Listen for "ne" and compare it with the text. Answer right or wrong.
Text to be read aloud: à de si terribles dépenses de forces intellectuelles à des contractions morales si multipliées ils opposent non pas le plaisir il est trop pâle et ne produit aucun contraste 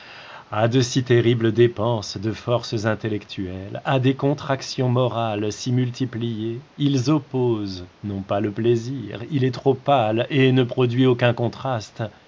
right